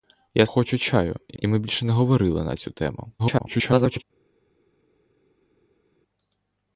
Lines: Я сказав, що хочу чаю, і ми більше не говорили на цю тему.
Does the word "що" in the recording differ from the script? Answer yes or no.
yes